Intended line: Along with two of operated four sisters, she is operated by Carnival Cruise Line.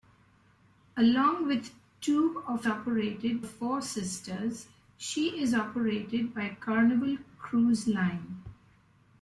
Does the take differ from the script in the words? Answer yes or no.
no